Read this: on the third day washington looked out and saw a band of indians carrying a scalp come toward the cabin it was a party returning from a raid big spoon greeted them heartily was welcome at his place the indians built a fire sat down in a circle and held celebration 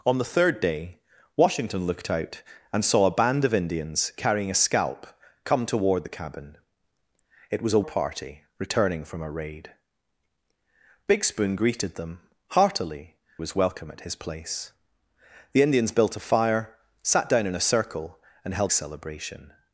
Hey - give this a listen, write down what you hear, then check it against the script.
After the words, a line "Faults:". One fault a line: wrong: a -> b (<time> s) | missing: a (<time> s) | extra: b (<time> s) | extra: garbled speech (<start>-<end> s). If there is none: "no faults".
on the third day washington looked out and saw a band of indians carrying a scalp come toward the cabin it was a party returning from a raid big spoon greeted them heartily was welcome at his place the indians built a fire sat down in a circle and held celebration
Faults:
no faults